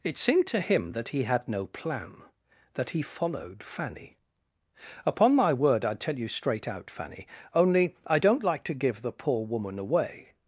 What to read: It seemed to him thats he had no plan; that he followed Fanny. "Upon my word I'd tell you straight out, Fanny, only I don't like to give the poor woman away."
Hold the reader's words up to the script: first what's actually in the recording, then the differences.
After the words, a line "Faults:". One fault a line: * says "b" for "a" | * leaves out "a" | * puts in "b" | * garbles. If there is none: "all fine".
It seemed to him that he had no plan; that he followed Fanny. "Upon my word I'd tell you straight out, Fanny, only I don't like to give the poor woman away."
Faults:
* says "that" for "thats"